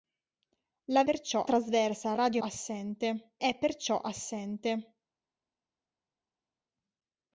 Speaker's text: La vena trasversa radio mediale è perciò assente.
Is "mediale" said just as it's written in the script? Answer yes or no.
no